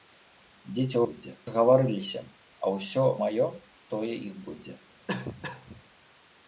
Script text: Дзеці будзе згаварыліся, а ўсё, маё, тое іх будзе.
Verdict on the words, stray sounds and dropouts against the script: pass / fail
fail